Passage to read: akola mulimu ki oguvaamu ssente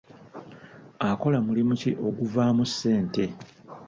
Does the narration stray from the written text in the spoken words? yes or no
no